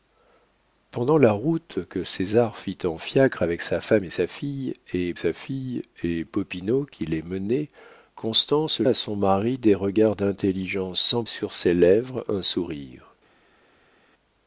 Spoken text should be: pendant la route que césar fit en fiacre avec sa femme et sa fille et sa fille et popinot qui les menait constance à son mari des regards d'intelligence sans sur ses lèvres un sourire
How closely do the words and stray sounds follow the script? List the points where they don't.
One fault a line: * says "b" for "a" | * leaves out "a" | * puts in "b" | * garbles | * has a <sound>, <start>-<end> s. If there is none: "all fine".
all fine